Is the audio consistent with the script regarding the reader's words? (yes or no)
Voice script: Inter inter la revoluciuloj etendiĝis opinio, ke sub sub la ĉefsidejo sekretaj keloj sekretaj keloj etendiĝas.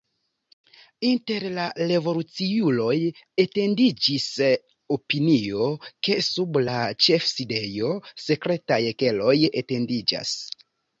no